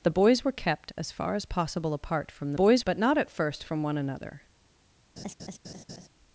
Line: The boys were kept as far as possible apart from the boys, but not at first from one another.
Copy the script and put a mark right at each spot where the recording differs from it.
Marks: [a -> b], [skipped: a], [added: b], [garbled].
The boys were kept as far as possible apart from the boys, but not at first from one another.